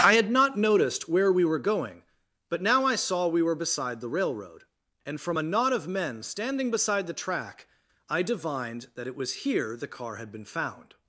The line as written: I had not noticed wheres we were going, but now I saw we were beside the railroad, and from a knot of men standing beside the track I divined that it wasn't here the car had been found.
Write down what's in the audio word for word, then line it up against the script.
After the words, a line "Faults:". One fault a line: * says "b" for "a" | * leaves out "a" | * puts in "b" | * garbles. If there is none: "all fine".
I had not noticed where we were going, but now I saw we were beside the railroad, and from a knot of men standing beside the track I divined that it was here the car had been found.
Faults:
* says "where" for "wheres"
* says "was" for "wasn't"